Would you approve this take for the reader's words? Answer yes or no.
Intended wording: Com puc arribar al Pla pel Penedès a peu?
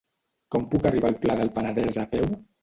no